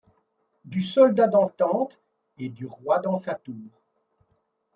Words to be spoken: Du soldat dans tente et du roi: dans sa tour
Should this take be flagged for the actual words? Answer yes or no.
no